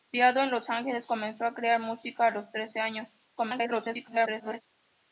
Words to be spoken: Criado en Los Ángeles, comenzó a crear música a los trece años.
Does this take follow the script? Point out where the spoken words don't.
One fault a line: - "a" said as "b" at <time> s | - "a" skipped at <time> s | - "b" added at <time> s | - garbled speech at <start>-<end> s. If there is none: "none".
- garbled speech at 3.4-4.6 s